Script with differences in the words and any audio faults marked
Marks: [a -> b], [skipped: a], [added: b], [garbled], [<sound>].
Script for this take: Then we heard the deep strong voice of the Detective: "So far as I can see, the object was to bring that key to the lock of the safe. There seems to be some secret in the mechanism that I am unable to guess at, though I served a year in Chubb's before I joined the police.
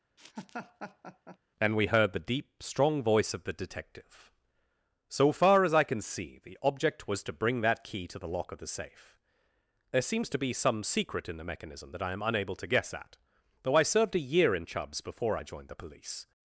[laugh] [Then -> And] we heard the deep strong voice of the Detective: "So far as I can see, the object was to bring that key to the lock of the safe. There seems to be some secret in the mechanism that I am unable to guess at, though I served a year in Chubb's before I joined the police.